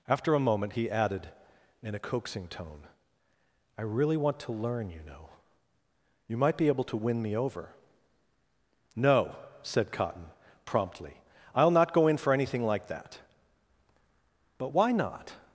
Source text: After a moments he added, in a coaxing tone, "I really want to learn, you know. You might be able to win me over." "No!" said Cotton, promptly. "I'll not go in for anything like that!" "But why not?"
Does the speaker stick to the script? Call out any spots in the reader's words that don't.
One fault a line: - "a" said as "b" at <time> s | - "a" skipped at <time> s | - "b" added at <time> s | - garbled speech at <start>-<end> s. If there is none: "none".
- "moments" said as "moment" at 0.4 s